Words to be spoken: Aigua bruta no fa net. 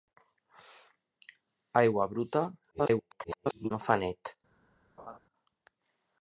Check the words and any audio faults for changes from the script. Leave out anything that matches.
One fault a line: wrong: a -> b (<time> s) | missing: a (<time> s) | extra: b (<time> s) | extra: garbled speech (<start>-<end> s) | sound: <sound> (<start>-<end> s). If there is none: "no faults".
extra: garbled speech (2.7-3.7 s)
sound: laugh (5.0-5.2 s)